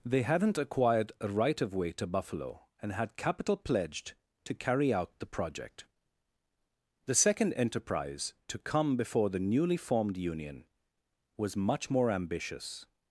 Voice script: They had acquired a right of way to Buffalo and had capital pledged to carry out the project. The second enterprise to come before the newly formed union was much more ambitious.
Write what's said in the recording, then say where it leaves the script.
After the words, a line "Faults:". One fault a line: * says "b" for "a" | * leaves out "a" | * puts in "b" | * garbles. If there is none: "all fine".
They hadn't acquired a right of way to Buffalo and had capital pledged to carry out the project. The second enterprise to come before the newly formed union was much more ambitious.
Faults:
* says "hadn't" for "had"